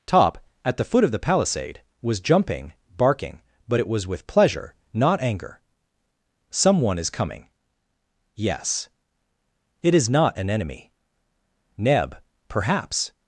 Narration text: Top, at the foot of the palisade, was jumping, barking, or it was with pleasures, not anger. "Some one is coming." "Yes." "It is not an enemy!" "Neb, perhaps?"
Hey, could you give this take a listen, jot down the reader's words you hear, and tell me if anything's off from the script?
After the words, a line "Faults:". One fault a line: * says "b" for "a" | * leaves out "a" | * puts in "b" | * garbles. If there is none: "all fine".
Top, at the foot of the palisade, was jumping, barking, but it was with pleasure, not anger. "Some one is coming." "Yes." "It is not an enemy!" "Neb, perhaps?"
Faults:
* says "but" for "or"
* says "pleasure" for "pleasures"